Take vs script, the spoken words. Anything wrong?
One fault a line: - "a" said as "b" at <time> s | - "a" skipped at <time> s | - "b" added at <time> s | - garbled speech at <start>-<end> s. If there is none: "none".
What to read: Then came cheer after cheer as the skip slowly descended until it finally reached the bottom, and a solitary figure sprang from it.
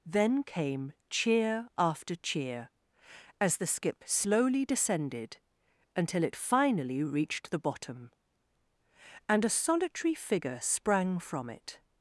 none